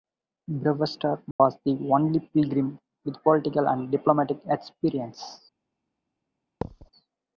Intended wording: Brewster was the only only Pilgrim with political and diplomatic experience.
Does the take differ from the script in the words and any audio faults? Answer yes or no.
yes